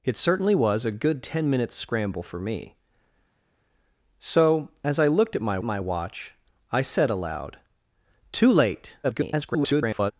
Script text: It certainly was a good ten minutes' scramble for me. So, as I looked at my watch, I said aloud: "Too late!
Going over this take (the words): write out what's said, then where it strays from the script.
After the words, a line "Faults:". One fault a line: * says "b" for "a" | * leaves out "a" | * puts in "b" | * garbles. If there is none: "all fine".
It certainly was a good ten minutes' scramble for me. So, as I looked at my my watch, I said aloud: "Too late! [garbled]
Faults:
* puts in "my"
* garbles